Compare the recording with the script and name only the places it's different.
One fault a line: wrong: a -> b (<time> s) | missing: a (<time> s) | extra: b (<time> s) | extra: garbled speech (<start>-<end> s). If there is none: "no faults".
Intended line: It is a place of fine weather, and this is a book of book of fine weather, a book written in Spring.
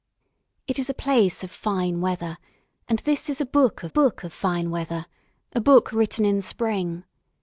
no faults